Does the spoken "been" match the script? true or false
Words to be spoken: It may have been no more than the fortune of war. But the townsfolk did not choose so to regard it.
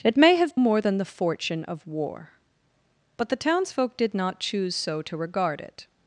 false